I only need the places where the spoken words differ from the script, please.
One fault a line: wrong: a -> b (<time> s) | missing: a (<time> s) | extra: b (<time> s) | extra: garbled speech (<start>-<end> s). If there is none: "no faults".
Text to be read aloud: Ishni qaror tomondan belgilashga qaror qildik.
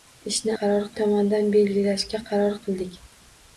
no faults